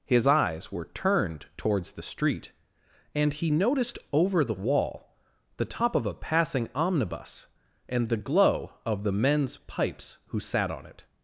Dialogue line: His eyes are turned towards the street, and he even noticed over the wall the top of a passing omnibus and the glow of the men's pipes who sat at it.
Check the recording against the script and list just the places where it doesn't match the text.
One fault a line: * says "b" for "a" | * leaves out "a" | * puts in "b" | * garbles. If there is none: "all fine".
* says "were" for "are"
* leaves out "even"
* says "on" for "at"